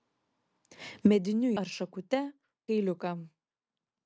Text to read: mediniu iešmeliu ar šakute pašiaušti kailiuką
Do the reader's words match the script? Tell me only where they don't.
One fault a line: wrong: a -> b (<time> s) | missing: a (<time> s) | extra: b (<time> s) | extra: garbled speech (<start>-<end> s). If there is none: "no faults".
missing: iešmeliu (1.5 s)
missing: pašiaušti (2.2 s)